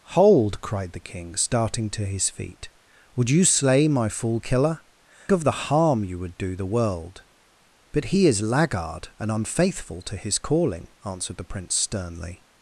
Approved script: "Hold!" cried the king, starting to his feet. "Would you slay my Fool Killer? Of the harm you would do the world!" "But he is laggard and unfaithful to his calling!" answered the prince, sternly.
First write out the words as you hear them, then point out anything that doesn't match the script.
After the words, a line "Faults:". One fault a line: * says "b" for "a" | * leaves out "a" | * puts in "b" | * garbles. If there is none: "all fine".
"Hold!" cried the king, starting to his feet. "Would you slay my Fool Killer? Of the harm you would do the world!" "But he is laggard and unfaithful to his calling!" answered the prince, sternly.
Faults:
all fine